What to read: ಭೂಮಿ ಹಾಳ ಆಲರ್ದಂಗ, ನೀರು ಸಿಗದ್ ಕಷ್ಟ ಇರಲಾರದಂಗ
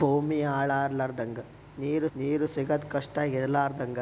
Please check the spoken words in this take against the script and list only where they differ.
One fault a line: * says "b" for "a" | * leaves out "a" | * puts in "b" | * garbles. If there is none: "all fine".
* puts in "ನೀರು"